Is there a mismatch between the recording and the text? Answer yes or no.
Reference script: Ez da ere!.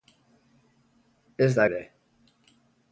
no